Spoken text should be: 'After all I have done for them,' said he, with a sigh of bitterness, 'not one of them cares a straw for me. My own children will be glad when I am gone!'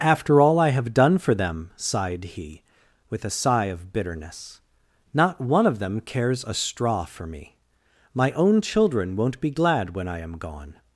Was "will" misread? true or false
true